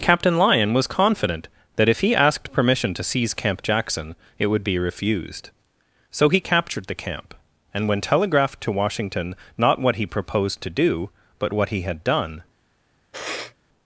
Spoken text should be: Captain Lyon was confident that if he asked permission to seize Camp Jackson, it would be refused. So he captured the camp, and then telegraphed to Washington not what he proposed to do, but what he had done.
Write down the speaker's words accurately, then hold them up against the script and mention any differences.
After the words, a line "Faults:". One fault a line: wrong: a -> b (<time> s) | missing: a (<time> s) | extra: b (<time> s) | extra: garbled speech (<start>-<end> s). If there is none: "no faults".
Captain Lyon was confident that if he asked permission to seize Camp Jackson, it would be refused. So he captured the camp, and when telegraphed to Washington not what he proposed to do, but what he had done.
Faults:
wrong: then -> when (7.9 s)